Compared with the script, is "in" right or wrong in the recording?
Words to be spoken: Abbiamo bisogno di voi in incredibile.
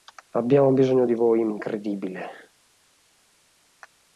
right